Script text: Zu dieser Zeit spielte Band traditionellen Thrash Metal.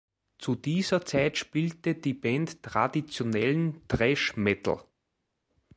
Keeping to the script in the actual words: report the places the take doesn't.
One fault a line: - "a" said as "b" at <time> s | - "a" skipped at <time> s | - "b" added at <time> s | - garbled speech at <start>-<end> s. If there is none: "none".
- "die" added at 1.9 s